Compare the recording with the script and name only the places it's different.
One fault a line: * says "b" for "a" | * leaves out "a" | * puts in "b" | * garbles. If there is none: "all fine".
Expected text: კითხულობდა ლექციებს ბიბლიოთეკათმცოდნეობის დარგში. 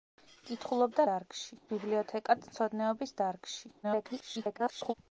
* says "დარგში" for "ლექციებს"
* garbles